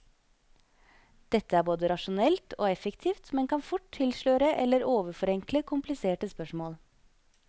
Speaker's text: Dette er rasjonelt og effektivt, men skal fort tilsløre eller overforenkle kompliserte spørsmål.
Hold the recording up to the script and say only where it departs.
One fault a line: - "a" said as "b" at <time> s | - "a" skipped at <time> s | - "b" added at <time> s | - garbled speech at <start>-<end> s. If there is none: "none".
- "både" added at 1.7 s
- "skal" said as "kan" at 3.5 s